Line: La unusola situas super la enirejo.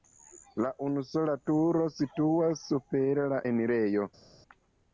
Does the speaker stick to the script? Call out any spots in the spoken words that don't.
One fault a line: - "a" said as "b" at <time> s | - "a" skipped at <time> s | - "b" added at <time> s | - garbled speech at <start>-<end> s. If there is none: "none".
- "turo" added at 1.5 s